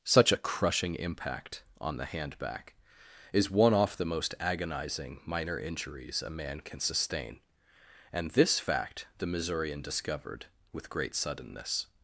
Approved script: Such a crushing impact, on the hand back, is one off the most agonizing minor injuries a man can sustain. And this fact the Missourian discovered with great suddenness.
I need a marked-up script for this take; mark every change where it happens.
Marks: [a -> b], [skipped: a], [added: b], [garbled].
Such a crushing impact, on the hand back, is one off the most agonizing minor injuries a man can sustain. And this fact the Missourian discovered with great suddenness.